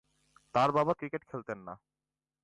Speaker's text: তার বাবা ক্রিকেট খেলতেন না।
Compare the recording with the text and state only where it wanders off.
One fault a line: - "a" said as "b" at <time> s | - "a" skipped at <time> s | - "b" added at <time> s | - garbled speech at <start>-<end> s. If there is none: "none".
none